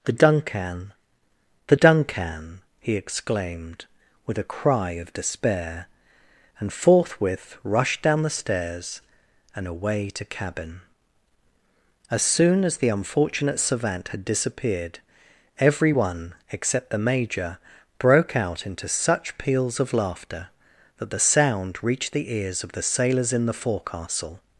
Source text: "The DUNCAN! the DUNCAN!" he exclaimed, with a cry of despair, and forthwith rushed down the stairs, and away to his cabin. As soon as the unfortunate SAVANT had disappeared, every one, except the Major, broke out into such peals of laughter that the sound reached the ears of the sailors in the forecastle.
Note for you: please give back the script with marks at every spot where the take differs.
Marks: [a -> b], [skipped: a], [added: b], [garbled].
"The DUNCAN! the DUNCAN!" he exclaimed, with a cry of despair, and forthwith rushed down the stairs, and away to [skipped: his] cabin. As soon as the unfortunate SAVANT had disappeared, every one, except the Major, broke out into such peals of laughter that the sound reached the ears of the sailors in the forecastle.